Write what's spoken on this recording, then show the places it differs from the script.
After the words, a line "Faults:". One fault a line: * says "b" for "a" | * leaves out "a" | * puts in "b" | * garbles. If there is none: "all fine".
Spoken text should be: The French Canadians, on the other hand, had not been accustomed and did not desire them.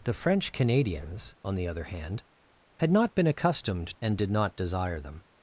The French Canadians, on the other hand, had not been accustomed and did not desire them.
Faults:
all fine